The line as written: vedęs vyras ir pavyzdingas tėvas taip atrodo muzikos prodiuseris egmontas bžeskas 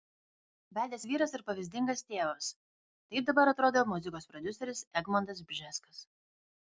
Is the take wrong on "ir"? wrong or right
right